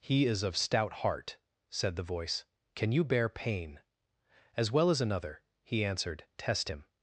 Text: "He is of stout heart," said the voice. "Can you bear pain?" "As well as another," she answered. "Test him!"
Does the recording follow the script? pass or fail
fail